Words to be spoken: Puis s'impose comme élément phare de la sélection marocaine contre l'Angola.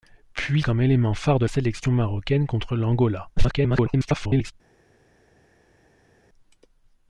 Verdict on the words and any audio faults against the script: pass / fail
fail